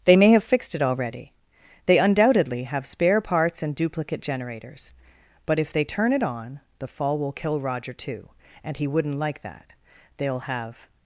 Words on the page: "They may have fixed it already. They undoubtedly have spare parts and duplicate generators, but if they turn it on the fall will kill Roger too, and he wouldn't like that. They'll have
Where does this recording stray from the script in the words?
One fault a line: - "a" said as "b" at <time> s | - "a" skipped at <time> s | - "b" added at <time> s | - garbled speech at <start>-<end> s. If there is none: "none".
none